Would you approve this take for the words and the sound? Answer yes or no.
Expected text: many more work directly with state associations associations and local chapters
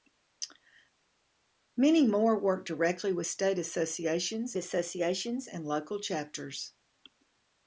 yes